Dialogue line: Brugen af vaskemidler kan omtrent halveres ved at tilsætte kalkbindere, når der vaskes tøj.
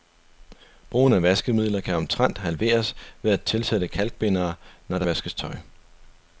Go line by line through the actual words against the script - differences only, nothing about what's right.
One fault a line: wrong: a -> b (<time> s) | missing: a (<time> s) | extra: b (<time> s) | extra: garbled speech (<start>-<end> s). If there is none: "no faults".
no faults